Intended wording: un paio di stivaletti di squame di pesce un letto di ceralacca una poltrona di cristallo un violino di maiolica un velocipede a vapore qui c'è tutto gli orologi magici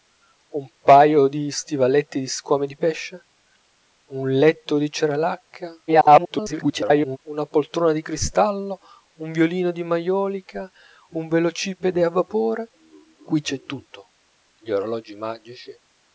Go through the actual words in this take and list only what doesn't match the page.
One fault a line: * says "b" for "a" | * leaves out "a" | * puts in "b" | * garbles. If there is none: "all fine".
* garbles